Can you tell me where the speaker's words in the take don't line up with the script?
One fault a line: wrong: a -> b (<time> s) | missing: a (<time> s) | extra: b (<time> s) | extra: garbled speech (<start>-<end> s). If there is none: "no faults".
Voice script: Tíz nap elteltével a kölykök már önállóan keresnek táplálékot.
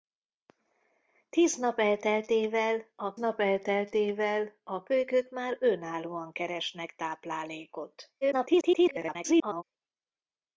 extra: nap elteltével a (3.1 s)
extra: garbled speech (8.2-9.6 s)